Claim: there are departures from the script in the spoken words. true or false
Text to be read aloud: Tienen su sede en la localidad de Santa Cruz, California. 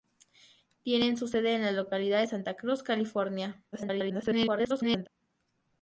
true